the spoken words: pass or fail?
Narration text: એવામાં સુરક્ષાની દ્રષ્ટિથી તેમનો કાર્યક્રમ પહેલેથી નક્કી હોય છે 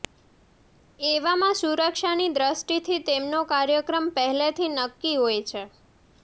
pass